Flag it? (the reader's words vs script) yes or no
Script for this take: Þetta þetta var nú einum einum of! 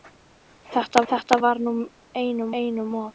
no